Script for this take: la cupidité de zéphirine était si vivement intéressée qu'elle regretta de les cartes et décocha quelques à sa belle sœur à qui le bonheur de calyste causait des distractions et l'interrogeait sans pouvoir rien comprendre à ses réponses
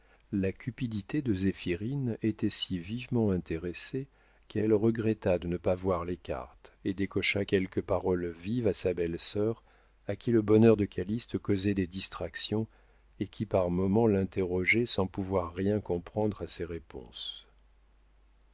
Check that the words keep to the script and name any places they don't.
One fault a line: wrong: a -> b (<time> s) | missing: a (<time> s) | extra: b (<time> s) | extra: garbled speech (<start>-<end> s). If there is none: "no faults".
extra: ne pas voir (5.5 s)
extra: paroles vives (7.8 s)
extra: qui par moments (13.3 s)